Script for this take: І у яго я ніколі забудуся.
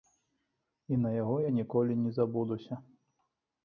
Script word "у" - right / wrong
wrong